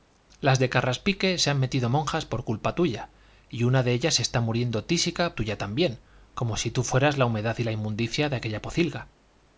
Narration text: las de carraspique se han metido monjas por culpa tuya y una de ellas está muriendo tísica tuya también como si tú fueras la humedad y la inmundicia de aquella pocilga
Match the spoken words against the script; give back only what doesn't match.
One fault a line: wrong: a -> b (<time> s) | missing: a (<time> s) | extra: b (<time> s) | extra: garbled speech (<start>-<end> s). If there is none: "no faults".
no faults